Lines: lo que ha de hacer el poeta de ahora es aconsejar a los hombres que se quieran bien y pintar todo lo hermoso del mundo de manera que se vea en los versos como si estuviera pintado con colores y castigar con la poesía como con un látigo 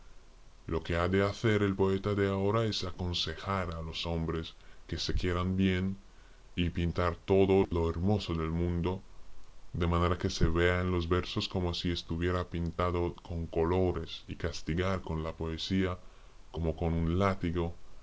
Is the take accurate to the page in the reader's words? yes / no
yes